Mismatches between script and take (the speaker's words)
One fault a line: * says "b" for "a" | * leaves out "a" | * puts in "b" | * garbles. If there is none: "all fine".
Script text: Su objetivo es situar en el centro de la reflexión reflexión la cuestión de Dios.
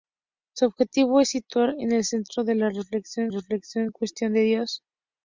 all fine